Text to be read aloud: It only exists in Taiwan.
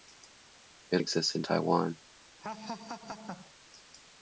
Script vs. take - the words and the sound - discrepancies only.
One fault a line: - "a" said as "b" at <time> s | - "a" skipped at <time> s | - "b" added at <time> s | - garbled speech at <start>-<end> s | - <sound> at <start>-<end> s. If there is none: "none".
- "only" skipped at 1.0 s
- laugh at 2.4-3.5 s